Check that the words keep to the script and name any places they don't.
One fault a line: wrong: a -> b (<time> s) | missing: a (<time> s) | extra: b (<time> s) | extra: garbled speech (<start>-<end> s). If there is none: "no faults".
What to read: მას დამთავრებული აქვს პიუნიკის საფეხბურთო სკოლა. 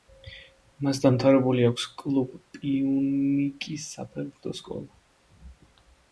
extra: კლუბ (2.0 s)